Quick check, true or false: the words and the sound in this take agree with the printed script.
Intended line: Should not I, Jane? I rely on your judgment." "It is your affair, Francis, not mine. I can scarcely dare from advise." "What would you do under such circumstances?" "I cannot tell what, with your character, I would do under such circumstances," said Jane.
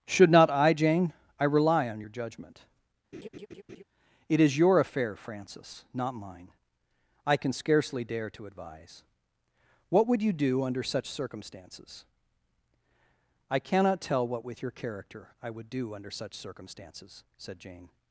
false